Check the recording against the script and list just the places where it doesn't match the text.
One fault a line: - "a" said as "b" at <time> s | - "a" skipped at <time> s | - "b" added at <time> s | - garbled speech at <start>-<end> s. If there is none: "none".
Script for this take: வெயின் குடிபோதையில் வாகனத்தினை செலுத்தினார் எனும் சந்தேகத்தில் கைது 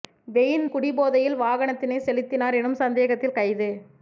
none